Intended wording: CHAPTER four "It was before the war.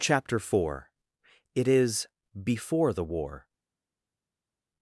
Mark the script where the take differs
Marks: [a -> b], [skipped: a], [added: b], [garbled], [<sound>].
CHAPTER four "It [was -> is] before the war.